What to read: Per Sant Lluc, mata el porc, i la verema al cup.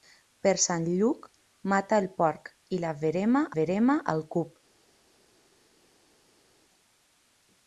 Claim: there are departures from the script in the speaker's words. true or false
true